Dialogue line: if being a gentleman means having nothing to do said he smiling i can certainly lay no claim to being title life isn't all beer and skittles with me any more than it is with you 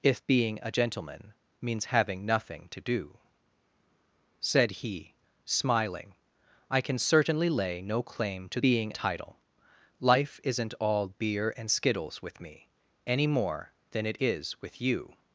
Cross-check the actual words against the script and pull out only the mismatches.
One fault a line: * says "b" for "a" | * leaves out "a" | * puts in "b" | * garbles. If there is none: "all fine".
all fine